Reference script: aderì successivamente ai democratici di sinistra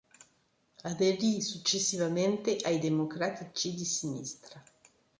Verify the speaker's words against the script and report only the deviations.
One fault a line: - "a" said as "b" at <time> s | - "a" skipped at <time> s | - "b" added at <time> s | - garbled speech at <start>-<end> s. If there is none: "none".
none